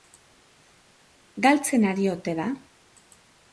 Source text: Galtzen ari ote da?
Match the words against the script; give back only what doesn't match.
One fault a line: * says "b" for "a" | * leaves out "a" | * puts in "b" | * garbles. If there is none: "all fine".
all fine